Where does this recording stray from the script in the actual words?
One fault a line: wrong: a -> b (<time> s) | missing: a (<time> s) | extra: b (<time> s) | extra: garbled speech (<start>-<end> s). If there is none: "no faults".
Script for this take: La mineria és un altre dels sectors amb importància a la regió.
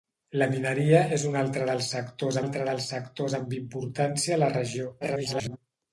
extra: altre dels sectors (2.4 s)
extra: garbled speech (5.0-5.6 s)